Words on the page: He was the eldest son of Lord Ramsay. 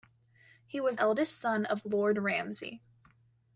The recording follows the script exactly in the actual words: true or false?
false